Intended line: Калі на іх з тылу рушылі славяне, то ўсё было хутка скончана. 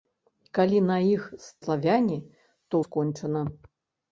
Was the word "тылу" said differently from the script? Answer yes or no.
yes